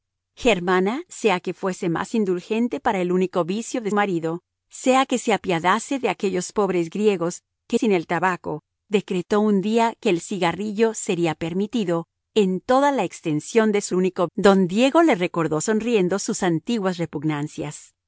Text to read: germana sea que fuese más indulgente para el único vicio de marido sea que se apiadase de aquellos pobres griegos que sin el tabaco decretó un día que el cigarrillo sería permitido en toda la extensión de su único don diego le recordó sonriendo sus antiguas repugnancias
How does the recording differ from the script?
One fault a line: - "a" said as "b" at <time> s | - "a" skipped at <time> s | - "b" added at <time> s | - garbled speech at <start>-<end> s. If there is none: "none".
none